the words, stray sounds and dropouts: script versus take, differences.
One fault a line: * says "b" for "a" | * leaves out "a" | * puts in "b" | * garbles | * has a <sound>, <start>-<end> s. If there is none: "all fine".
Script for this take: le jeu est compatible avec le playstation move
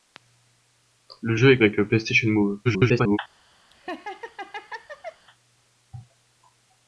* leaves out "compatible"
* garbles
* has a laugh, 3.7-5.3 s